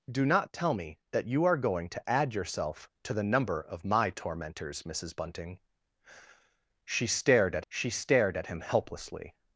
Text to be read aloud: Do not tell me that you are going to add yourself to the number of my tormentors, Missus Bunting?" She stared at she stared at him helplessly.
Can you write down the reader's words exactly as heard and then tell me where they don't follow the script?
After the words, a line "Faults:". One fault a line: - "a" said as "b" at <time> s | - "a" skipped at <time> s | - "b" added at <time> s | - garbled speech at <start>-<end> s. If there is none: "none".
Do not tell me that you are going to add yourself to the number of my tormentors, Missus Bunting?" She stared at she stared at him helplessly.
Faults:
none